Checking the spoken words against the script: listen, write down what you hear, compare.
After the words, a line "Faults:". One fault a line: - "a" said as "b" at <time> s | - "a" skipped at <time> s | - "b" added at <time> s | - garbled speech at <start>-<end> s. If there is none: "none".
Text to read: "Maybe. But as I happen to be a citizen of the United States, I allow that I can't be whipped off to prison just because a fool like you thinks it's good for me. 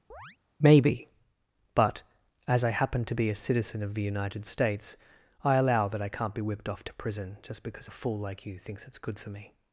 "Maybe. But as I happen to be a citizen of the United States, I allow that I can't be whipped off to prison just because a fool like you thinks it's good for me.
Faults:
none